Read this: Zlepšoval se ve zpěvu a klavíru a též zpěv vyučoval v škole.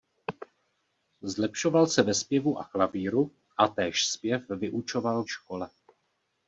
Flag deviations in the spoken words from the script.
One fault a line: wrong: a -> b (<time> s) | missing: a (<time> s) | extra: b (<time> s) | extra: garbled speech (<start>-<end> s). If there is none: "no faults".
no faults